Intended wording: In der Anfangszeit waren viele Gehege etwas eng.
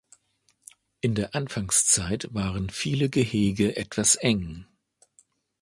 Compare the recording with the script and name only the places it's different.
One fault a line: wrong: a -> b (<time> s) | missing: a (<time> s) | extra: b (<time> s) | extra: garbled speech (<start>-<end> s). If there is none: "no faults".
no faults